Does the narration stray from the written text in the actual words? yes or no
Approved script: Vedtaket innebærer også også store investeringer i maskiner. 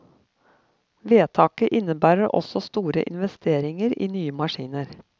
yes